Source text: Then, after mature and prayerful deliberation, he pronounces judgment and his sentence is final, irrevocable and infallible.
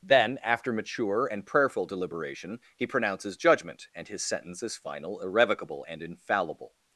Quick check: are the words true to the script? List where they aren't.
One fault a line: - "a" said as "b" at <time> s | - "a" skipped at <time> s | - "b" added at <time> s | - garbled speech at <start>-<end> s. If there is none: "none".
none